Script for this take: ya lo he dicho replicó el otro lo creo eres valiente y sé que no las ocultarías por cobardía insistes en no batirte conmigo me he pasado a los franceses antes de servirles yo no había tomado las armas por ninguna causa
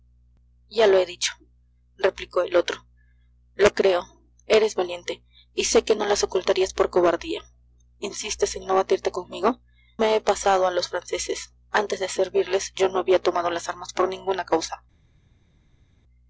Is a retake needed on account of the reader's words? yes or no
no